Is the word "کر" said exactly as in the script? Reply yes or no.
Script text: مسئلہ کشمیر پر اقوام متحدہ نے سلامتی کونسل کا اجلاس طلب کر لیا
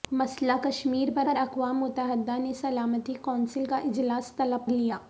no